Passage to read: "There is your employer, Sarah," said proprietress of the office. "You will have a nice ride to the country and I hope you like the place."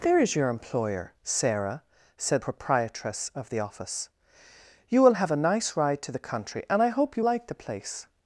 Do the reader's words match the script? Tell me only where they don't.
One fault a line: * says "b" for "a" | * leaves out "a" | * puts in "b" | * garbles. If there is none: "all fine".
all fine